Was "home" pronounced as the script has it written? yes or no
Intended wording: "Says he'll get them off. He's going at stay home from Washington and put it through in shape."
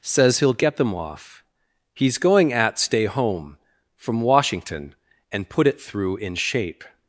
yes